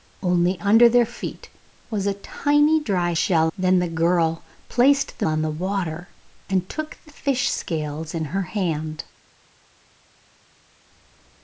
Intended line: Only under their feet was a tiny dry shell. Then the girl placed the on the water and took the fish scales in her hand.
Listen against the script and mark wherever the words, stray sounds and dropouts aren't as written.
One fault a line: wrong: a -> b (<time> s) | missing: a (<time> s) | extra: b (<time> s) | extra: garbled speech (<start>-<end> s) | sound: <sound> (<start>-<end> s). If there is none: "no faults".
no faults